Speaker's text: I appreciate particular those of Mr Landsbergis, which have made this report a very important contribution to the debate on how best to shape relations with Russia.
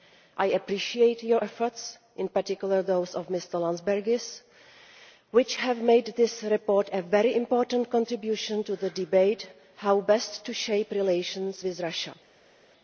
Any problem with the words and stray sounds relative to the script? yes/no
yes